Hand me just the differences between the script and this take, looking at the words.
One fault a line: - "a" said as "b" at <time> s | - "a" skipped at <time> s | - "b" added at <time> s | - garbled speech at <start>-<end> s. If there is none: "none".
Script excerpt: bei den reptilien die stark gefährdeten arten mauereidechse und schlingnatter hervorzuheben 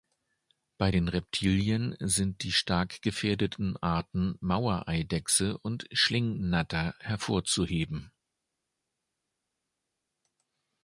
- "sind" added at 2.0 s